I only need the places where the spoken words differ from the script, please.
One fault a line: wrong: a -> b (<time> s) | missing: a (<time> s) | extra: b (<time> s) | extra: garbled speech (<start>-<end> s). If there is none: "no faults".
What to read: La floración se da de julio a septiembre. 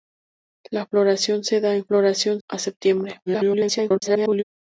wrong: julio -> floración (1.8 s)
extra: garbled speech (3.3-4.4 s)